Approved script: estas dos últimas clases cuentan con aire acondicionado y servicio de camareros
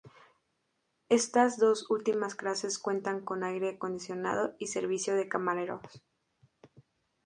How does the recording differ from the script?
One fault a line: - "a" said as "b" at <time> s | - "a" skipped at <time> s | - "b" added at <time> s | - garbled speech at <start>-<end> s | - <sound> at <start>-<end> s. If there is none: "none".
none